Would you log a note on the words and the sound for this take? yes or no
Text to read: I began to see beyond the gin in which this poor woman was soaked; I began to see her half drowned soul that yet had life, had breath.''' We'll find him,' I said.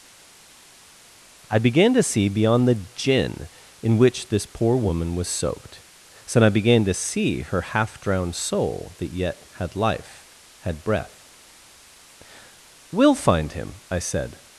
yes